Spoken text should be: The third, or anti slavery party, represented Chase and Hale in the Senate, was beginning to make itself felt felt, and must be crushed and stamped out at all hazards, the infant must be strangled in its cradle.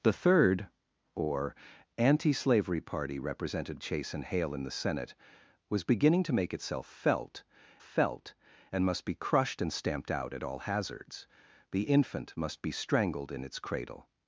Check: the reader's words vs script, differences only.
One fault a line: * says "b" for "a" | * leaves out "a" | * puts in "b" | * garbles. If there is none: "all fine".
all fine